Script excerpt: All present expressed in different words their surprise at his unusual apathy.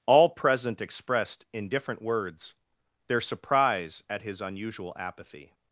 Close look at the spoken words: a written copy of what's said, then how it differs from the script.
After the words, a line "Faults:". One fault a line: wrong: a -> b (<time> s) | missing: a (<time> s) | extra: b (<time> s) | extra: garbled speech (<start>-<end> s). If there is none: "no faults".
All present expressed in different words their surprise at his unusual apathy.
Faults:
no faults